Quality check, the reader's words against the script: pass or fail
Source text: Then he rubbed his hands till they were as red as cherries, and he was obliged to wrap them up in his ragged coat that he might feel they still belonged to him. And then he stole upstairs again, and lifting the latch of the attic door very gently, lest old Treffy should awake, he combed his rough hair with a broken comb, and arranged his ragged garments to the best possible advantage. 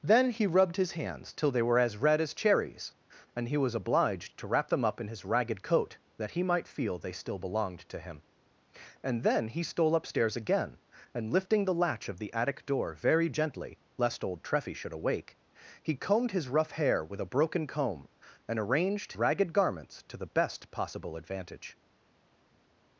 fail